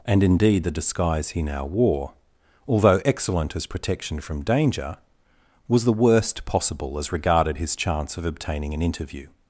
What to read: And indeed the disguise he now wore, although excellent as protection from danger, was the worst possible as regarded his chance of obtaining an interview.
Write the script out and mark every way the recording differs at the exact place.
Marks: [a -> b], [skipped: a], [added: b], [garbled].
And indeed the disguise he now wore, although excellent as protection from danger, was the worst possible as regarded his chance of obtaining an interview.